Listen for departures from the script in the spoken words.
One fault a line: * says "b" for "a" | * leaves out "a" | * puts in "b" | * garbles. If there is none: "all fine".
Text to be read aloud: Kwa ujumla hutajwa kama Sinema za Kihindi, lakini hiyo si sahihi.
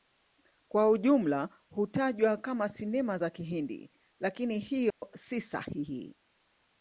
all fine